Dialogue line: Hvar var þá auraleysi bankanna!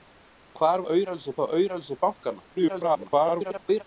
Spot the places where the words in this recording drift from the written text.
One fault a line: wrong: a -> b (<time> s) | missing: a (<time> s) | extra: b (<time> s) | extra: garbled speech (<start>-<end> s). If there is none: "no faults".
wrong: var -> auraleysi (0.9 s)
extra: garbled speech (2.5-3.8 s)